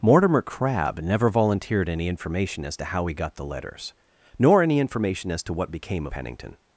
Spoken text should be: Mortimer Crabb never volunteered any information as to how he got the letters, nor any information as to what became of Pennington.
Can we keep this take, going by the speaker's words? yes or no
yes